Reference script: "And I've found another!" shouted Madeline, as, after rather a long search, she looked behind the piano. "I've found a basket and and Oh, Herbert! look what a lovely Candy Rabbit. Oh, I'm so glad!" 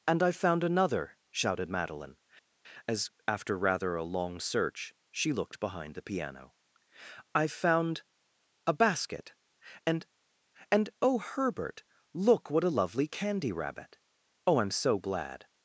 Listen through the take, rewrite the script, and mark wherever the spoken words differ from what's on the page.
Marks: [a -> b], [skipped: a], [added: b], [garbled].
"And I've found another!" shouted Madeline, as, after rather a long search, she looked behind the piano. "I've found a basket and and Oh, Herbert! look what a lovely Candy Rabbit. Oh, I'm so glad!"